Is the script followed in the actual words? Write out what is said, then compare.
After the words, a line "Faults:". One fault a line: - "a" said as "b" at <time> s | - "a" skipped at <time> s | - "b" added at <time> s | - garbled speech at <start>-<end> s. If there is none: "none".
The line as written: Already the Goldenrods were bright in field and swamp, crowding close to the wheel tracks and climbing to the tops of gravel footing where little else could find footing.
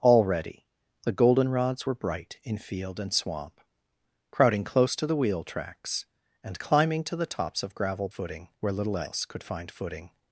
Already the Goldenrods were bright in field and swamp, crowding close to the wheel tracks and climbing to the tops of gravel footing where little else could find footing.
Faults:
none